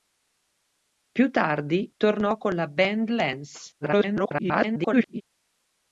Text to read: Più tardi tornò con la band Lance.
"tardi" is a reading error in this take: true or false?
false